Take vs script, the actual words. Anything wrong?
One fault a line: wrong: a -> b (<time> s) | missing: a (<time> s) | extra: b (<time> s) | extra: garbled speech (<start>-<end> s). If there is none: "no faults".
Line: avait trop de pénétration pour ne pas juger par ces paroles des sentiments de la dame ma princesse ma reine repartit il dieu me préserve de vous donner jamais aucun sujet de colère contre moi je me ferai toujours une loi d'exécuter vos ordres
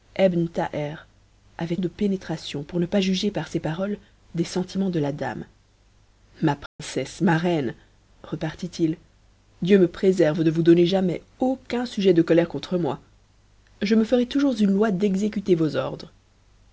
missing: trop (1.8 s)